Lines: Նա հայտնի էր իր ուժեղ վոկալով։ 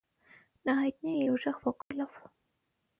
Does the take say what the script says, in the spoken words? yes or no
no